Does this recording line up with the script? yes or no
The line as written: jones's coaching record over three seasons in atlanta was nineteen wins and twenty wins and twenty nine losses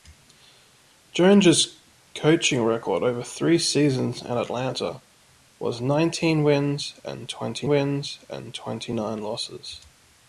yes